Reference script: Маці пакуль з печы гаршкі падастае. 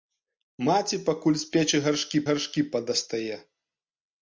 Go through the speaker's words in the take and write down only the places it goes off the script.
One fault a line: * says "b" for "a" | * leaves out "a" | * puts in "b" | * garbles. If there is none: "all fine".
* puts in "гаршкі"